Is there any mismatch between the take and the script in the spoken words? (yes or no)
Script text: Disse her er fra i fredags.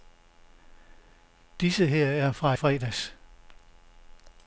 yes